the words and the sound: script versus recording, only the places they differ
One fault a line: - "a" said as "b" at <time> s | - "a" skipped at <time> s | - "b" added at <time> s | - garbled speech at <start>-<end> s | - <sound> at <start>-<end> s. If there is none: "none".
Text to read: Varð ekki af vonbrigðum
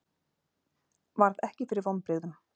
- "af" said as "fyrir" at 1.7 s